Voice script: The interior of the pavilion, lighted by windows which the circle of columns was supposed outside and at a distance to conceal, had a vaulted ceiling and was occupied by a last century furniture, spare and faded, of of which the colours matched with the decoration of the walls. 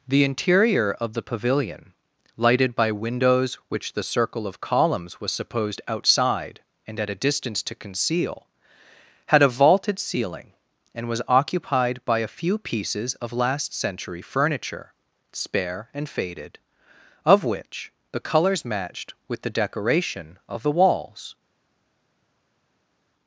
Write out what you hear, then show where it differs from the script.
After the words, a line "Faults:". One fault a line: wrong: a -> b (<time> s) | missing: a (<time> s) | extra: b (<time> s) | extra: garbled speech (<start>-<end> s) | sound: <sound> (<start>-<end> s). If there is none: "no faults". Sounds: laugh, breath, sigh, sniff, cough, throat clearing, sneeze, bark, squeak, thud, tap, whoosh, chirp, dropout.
The interior of the pavilion, lighted by windows which the circle of columns was supposed outside and at a distance to conceal, had a vaulted ceiling and was occupied by a few pieces of last century furniture, spare and faded, of which the colours matched with the decoration of the walls.
Faults:
extra: few pieces of (12.3 s)
missing: of (17.4 s)